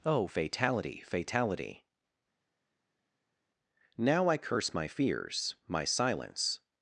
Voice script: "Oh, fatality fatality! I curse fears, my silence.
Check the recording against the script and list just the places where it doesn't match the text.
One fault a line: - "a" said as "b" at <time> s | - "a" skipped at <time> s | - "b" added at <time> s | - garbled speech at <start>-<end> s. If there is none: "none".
- "Now" added at 4.0 s
- "my" added at 4.7 s